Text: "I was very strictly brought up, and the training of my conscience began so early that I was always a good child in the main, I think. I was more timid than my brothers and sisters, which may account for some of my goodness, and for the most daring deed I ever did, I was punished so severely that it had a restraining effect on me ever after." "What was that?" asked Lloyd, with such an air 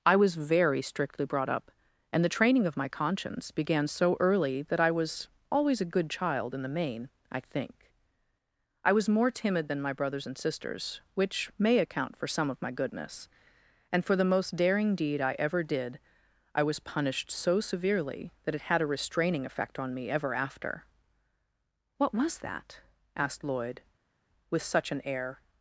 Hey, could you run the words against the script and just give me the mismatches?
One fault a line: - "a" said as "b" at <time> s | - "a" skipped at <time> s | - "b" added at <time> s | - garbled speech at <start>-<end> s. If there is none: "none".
none